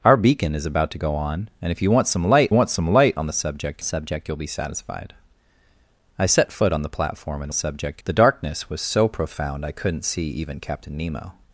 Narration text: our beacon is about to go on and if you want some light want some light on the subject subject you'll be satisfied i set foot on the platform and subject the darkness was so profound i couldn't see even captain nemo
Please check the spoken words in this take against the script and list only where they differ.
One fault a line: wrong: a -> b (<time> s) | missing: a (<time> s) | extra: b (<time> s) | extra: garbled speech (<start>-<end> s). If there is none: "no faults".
no faults